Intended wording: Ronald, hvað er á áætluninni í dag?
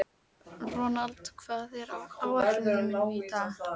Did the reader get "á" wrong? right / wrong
right